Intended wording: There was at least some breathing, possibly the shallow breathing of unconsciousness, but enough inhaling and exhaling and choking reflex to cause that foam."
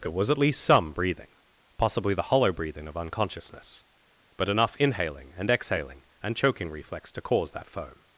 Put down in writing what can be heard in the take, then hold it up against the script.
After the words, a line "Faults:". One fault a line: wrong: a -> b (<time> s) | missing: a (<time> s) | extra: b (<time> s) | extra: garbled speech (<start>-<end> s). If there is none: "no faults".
There was at least some breathing, possibly the hollow breathing of unconsciousness, but enough inhaling and exhaling and choking reflex to cause that foam."
Faults:
wrong: shallow -> hollow (2.2 s)